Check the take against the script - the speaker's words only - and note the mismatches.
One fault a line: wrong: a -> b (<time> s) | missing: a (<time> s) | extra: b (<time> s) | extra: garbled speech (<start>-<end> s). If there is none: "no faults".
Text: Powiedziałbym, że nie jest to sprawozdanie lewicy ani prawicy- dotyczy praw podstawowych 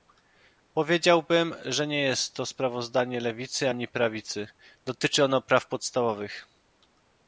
extra: ono (5.2 s)